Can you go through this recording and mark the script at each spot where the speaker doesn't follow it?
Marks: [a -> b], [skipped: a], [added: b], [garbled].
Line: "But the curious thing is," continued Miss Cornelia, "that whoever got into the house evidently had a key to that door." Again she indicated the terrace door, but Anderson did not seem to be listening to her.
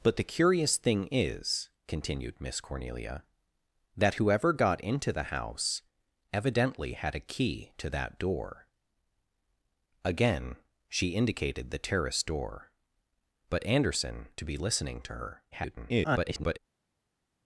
"But the curious thing is," continued Miss Cornelia, "that whoever got into the house evidently had a key to that door." Again she indicated the terrace door, but Anderson [skipped: did not seem] to be listening to her. [garbled]